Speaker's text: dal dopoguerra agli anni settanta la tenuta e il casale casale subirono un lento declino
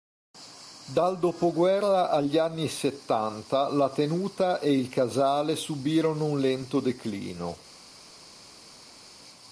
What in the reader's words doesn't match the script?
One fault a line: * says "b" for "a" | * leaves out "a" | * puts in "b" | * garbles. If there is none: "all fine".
* leaves out "casale"